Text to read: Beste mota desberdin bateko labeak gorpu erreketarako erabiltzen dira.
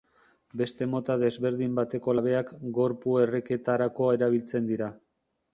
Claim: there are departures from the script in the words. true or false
false